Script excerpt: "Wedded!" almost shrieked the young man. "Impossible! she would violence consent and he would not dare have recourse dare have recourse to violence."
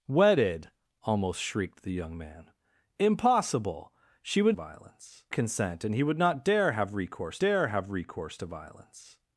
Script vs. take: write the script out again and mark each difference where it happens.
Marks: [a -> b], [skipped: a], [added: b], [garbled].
"Wedded!" almost shrieked the young man. "Impossible! she would violence consent and he would not dare have recourse dare have recourse to violence."